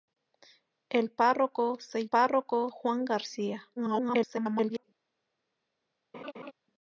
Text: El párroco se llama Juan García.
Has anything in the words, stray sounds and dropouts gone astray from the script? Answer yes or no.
yes